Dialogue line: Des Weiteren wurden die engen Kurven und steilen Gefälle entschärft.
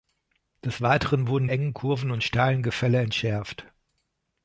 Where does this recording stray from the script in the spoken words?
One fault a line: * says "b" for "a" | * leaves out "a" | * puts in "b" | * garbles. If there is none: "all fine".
* leaves out "die"